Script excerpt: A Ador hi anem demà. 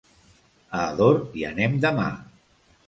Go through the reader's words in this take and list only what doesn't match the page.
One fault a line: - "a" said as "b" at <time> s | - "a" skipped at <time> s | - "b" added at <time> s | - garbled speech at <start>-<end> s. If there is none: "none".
none